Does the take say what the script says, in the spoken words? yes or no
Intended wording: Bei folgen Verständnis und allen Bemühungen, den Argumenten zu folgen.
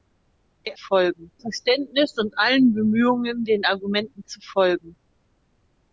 yes